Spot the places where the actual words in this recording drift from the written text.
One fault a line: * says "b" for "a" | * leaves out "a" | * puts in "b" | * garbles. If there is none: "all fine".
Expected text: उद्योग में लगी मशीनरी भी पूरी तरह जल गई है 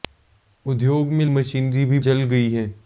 * leaves out "लगी"
* leaves out "पूरी तरह"